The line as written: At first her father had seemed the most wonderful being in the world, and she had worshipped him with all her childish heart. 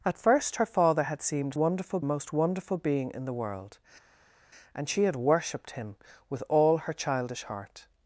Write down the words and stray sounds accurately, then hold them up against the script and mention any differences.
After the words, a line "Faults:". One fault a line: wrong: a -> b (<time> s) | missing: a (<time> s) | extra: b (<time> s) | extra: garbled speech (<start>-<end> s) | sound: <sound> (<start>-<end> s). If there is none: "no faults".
At first her father had seemed wonderful most wonderful being in the world, and she had worshipped him with all her childish heart.
Faults:
wrong: the -> wonderful (1.5 s)